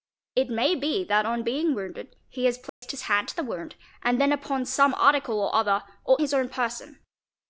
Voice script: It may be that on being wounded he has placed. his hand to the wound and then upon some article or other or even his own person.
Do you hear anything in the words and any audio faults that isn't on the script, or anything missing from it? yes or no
yes